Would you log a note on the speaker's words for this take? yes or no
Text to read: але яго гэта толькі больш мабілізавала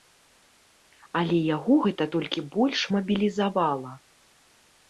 no